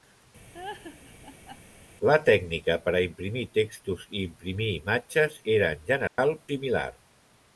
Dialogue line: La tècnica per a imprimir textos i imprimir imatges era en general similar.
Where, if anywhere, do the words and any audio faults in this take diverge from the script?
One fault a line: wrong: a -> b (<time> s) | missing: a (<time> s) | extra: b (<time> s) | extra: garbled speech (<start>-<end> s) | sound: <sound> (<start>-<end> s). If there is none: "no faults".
sound: laugh (0.5-1.6 s)
sound: dropout (6.1-6.2 s)